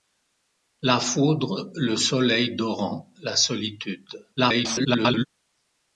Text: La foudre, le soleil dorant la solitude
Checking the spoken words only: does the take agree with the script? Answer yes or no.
no